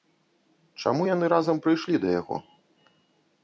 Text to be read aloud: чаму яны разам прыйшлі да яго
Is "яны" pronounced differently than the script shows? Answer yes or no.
no